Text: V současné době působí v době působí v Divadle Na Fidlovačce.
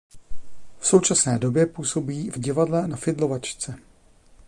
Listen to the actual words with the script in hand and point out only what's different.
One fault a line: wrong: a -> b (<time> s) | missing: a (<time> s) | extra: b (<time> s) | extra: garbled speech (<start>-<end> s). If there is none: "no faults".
missing: době působí v (2.4 s)